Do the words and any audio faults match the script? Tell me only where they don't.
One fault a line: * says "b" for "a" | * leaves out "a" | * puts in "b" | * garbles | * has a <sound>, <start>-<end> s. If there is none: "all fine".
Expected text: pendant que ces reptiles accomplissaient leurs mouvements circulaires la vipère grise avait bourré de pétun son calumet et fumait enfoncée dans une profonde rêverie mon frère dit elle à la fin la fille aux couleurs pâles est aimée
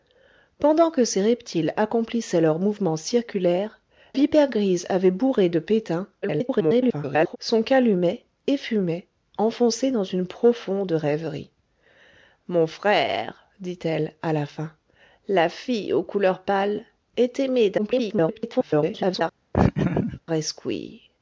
* leaves out "la"
* garbles
* garbles
* has a laugh, 19.5-20.2 s